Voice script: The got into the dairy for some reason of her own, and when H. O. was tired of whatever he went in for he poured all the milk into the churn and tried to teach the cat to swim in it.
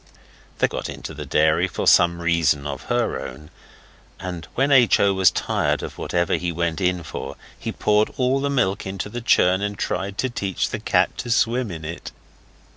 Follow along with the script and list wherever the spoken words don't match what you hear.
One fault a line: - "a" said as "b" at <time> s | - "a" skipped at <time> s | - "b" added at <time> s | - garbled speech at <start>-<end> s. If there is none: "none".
none